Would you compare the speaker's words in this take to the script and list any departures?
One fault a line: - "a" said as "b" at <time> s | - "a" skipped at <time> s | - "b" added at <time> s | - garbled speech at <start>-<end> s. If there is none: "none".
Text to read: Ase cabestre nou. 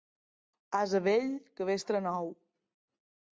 - "vell" added at 1.1 s